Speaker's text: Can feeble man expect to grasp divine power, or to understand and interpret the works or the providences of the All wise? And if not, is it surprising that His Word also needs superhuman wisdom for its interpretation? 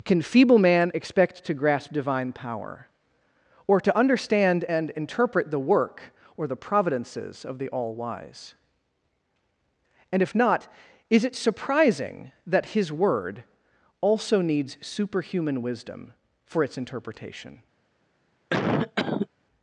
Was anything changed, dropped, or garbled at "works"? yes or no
yes